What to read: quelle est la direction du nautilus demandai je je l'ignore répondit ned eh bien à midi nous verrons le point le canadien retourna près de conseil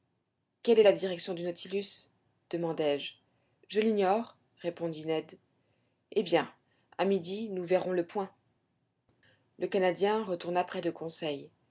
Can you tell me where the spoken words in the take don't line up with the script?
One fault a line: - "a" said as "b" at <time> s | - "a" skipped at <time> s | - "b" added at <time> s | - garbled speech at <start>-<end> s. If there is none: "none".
none